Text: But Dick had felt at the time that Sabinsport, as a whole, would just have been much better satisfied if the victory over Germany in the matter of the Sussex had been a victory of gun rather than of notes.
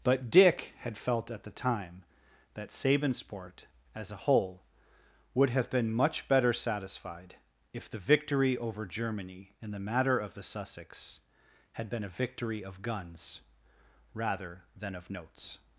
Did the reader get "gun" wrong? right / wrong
wrong